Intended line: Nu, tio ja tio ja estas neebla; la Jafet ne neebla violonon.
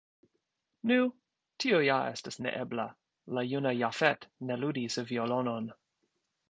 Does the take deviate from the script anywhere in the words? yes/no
yes